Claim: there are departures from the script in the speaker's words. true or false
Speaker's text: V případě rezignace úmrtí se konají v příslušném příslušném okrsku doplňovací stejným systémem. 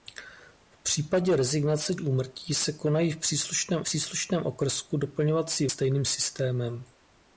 false